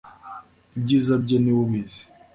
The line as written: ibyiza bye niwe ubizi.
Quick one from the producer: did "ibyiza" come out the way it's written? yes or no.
yes